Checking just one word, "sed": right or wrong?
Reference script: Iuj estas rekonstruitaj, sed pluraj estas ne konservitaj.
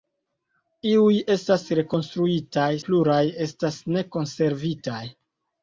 wrong